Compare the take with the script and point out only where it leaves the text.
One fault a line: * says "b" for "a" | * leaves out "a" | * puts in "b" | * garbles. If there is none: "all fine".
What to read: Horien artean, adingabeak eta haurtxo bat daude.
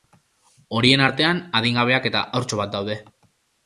all fine